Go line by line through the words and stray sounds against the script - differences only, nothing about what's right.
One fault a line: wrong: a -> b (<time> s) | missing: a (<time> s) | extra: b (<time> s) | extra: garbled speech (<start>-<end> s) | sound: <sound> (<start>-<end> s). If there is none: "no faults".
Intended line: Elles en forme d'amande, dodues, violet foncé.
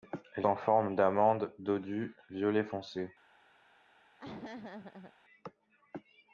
sound: laugh (4.2-5.1 s)